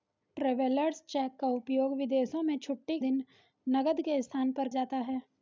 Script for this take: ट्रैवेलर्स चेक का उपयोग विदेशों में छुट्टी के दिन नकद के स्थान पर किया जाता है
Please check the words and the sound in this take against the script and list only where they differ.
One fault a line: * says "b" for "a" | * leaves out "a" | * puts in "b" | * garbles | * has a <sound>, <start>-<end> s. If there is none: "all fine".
* leaves out "के"
* leaves out "किया"